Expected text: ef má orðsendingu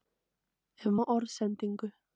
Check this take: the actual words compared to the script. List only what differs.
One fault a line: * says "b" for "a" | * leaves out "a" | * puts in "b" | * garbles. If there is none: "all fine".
all fine